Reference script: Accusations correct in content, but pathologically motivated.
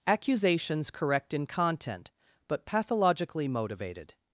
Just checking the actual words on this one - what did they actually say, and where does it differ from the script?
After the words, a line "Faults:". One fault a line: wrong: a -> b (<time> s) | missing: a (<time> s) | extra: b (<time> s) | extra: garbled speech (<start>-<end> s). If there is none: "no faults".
Accusations correct in content, but pathologically motivated.
Faults:
no faults